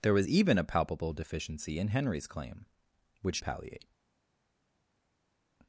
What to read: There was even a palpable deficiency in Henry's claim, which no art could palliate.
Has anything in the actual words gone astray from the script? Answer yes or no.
yes